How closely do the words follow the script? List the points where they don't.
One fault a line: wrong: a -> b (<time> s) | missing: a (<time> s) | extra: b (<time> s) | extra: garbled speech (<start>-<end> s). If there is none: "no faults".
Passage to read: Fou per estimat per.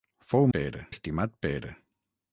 no faults